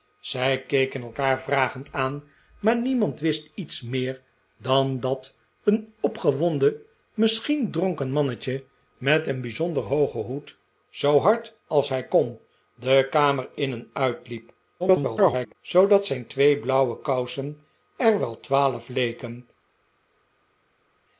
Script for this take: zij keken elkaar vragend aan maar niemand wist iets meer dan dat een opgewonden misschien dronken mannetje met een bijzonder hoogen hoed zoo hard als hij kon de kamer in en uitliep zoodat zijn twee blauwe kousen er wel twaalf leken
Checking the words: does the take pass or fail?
fail